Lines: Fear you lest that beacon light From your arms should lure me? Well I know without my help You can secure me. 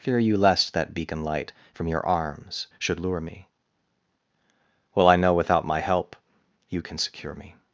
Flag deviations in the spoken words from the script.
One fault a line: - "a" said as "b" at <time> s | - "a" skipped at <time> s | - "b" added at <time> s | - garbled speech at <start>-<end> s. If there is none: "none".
none